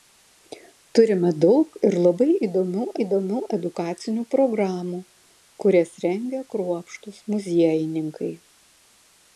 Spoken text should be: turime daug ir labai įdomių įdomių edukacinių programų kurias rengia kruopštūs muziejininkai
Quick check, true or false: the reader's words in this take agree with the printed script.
true